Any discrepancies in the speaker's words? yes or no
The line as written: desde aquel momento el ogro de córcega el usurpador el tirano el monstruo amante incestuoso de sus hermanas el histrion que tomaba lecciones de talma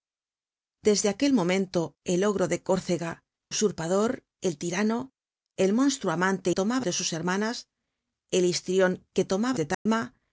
yes